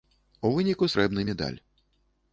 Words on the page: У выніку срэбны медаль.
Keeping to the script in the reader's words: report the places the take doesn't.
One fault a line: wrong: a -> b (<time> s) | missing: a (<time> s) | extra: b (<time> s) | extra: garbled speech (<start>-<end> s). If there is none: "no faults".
no faults